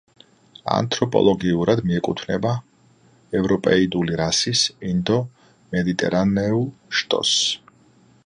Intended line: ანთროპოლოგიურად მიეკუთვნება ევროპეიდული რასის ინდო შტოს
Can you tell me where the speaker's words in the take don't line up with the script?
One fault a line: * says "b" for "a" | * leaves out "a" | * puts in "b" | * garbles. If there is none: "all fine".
* puts in "მედიტერანეულ"